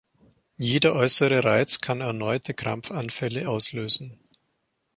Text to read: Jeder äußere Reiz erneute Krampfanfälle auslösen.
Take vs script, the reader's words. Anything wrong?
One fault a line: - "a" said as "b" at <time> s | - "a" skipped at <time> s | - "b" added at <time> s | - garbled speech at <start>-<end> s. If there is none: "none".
- "kann" added at 1.8 s